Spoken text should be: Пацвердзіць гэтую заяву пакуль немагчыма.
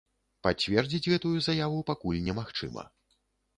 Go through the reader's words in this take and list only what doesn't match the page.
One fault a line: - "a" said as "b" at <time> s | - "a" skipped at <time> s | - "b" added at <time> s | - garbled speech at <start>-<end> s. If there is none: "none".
none